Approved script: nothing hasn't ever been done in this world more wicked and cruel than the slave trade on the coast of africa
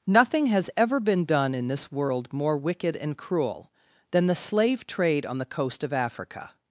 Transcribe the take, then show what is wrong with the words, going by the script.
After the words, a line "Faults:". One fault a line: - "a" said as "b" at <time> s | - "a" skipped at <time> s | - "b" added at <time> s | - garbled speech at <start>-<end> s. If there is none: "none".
nothing has ever been done in this world more wicked and cruel than the slave trade on the coast of africa
Faults:
- "hasn't" said as "has" at 0.5 s